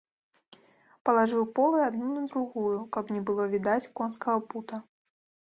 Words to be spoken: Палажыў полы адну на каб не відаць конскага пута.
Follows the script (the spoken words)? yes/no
no